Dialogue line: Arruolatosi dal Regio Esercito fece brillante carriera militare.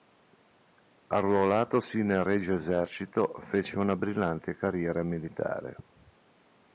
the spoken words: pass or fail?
fail